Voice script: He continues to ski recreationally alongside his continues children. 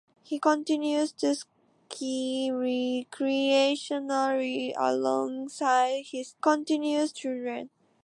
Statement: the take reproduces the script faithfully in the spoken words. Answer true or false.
true